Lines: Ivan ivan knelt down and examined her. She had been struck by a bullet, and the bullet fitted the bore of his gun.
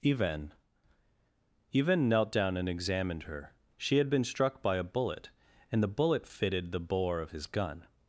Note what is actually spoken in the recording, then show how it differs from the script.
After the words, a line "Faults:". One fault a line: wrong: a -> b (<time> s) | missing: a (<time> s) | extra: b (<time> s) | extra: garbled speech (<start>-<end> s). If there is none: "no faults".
Ivan ivan knelt down and examined her. She had been struck by a bullet, and the bullet fitted the bore of his gun.
Faults:
no faults